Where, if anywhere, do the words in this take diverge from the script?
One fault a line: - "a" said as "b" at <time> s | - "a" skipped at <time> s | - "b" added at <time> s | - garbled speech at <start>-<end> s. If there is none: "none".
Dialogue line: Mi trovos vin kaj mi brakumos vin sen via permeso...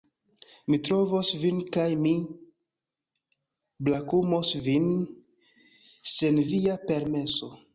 none